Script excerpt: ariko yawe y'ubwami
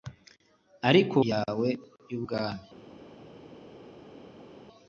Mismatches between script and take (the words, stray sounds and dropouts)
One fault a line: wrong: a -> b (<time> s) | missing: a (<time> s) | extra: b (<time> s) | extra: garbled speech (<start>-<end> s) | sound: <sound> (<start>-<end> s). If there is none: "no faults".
no faults